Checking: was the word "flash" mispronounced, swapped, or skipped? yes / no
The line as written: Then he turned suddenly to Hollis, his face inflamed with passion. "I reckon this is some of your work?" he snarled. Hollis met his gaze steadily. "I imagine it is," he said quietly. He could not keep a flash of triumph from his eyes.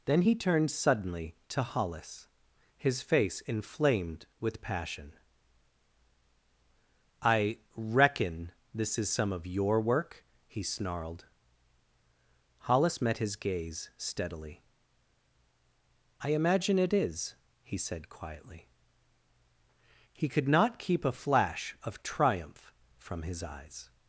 no